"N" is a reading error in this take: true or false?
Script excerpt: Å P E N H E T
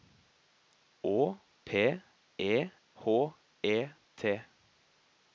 true